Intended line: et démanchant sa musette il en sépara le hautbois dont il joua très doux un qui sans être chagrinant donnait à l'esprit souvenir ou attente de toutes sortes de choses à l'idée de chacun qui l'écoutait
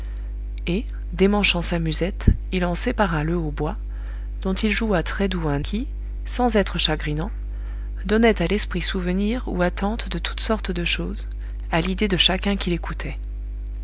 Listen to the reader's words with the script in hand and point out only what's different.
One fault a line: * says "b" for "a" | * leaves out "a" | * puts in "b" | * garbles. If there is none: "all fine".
all fine